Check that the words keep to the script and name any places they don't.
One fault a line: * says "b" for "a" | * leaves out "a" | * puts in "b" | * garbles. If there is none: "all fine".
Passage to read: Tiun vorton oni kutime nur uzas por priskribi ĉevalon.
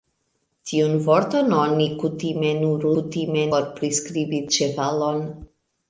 * says "kutime" for "uzas"